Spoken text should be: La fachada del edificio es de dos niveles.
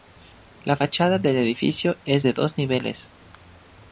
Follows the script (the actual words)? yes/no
yes